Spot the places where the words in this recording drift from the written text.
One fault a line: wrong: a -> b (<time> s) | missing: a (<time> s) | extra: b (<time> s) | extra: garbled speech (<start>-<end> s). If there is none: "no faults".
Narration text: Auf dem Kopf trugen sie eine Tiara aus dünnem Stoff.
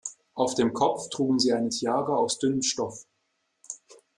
no faults